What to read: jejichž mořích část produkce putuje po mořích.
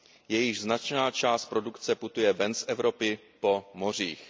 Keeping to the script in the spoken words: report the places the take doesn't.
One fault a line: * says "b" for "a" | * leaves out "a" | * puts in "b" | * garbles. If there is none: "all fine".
* says "značná" for "mořích"
* puts in "ven z Evropy"